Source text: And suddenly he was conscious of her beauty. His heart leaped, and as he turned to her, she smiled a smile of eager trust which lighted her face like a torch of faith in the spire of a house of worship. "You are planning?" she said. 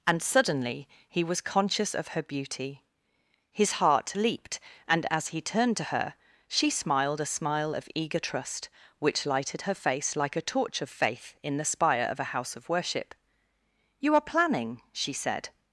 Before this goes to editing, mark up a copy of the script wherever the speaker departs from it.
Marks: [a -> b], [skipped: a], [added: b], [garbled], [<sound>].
And suddenly he was conscious of her beauty. His heart leaped, and as he turned to her, she smiled a smile of eager trust which lighted her face like a torch of faith in the spire of a house of worship. "You are planning?" she said.